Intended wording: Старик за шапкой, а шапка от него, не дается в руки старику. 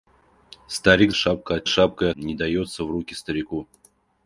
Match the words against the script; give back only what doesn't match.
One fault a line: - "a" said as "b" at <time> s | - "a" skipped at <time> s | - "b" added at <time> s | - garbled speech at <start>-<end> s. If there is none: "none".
- "за шапкой" skipped at 1.1 s
- "него" said as "шапкой" at 1.7 s